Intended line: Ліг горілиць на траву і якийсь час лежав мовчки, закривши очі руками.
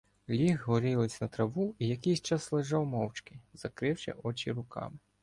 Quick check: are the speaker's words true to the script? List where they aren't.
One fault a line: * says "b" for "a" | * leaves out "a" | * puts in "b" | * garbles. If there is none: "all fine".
all fine